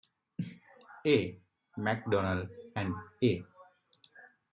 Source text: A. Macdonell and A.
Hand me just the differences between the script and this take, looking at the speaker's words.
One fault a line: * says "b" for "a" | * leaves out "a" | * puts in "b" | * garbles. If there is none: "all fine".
all fine